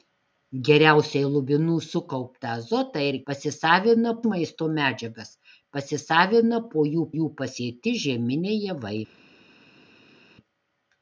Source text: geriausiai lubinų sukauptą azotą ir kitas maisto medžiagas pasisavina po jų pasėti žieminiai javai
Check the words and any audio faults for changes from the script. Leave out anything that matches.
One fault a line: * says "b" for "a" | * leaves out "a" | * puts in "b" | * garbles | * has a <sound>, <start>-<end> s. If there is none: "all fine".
* says "pasisavina" for "kitas"
* puts in "jų"